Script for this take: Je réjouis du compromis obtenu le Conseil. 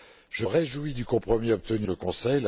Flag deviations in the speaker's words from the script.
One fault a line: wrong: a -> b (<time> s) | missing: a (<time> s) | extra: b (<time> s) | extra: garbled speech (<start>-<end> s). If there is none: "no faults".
no faults